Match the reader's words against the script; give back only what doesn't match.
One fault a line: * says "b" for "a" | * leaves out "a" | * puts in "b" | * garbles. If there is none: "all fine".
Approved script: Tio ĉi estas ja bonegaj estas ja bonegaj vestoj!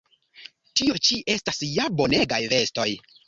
* leaves out "estas ja bonegaj"